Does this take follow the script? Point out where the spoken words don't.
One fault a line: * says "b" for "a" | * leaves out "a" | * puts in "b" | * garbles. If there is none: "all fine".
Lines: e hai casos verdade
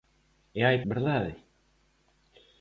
* leaves out "casos"